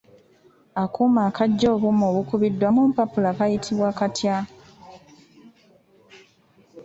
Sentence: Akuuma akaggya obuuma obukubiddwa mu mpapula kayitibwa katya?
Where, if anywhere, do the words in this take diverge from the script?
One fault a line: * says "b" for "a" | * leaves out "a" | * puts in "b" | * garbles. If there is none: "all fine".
all fine